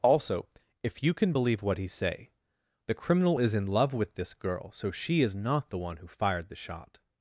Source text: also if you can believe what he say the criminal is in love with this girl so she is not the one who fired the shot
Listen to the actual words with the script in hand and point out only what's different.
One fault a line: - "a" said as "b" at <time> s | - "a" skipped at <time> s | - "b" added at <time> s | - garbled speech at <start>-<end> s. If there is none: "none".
none